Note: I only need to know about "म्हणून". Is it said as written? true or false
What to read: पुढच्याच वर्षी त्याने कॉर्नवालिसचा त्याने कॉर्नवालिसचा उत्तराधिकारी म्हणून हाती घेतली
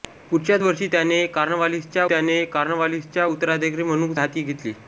true